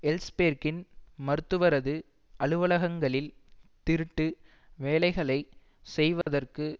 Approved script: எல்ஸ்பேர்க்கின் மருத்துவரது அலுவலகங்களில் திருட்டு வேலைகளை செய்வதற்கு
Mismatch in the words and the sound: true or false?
true